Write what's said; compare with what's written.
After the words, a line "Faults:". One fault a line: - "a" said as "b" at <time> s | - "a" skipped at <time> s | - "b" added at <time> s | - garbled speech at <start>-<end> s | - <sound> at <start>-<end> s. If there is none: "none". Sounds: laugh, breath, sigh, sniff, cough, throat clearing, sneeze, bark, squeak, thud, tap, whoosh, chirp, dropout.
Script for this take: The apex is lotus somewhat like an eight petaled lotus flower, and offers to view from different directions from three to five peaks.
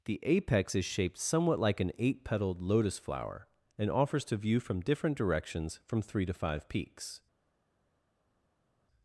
The apex is shaped somewhat like an eight petaled lotus flower, and offers to view from different directions from three to five peaks.
Faults:
- "lotus" said as "shaped" at 0.8 s